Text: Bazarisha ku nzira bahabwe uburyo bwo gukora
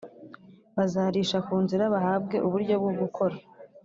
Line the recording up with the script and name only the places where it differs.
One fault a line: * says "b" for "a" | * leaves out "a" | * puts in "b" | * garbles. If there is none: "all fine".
all fine